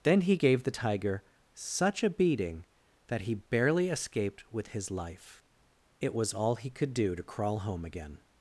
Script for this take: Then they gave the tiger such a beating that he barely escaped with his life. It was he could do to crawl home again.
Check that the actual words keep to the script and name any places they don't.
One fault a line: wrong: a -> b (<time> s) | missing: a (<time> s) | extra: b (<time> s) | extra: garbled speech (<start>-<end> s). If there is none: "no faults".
wrong: they -> he (0.2 s)
extra: all (6.3 s)